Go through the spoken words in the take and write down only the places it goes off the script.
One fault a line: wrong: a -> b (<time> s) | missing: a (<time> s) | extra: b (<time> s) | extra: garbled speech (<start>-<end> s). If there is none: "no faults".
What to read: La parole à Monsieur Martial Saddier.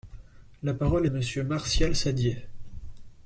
no faults